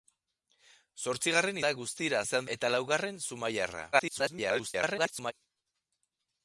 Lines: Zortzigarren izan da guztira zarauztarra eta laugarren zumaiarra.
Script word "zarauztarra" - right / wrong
wrong